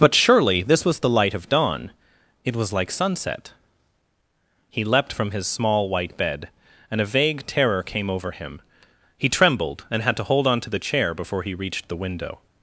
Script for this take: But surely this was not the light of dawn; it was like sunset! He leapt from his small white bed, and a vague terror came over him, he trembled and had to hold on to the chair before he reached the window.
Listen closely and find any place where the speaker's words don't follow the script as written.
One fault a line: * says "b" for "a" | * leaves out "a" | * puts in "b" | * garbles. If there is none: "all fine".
* leaves out "not"